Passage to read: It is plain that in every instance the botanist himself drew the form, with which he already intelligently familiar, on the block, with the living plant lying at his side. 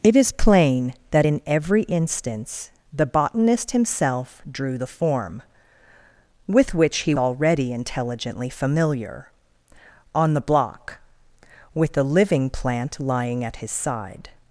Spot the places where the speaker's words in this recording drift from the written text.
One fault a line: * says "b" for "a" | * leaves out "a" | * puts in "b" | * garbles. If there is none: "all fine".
all fine